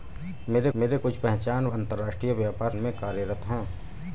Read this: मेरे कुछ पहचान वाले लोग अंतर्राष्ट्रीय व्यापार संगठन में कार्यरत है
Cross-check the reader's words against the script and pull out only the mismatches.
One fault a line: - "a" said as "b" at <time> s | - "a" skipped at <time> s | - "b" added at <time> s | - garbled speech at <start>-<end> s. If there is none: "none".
- "मेरे" added at 0.8 s
- "वाले लोग" skipped at 1.7 s
- "संगठन" skipped at 2.7 s